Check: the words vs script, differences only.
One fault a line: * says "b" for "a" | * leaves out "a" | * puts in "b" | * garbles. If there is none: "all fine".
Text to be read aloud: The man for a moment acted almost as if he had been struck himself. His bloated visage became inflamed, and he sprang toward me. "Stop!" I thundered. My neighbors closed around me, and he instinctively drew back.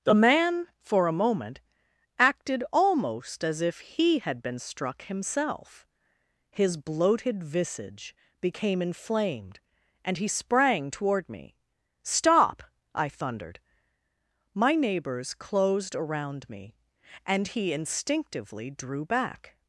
all fine